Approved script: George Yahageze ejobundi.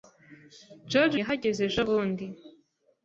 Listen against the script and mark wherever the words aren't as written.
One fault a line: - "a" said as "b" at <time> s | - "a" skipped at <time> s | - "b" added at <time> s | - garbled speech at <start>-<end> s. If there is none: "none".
none